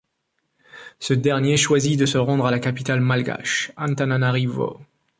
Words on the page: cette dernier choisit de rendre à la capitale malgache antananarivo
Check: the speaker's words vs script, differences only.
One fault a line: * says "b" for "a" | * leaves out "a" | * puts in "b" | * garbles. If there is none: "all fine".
* says "ce" for "cette"
* puts in "se"